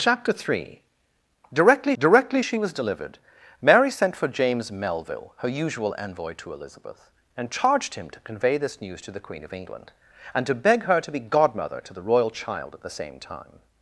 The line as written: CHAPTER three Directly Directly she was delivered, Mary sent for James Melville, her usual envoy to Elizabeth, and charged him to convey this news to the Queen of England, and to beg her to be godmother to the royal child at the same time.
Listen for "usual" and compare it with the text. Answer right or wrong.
right